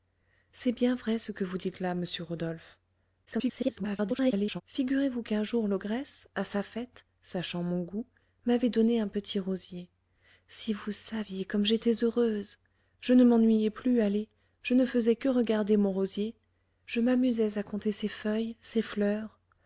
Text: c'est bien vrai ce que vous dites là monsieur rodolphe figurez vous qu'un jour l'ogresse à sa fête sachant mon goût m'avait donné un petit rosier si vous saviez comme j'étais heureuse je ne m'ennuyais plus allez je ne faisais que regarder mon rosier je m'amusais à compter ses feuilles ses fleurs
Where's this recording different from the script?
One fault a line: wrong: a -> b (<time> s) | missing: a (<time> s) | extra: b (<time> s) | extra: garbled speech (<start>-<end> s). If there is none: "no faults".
extra: garbled speech (3.3-4.6 s)